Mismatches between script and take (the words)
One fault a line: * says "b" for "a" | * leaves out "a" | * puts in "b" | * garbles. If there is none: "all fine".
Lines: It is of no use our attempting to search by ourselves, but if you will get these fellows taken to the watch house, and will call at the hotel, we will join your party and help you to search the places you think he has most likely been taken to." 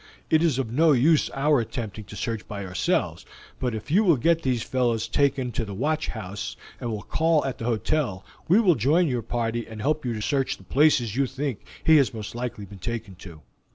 all fine